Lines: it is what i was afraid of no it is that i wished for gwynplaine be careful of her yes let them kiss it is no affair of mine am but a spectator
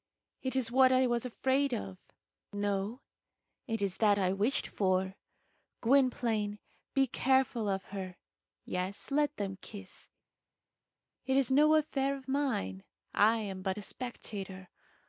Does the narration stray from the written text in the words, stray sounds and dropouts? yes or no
yes